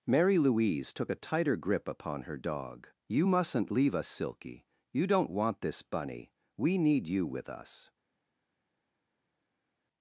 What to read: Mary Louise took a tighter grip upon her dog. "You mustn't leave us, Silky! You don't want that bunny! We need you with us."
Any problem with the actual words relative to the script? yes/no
yes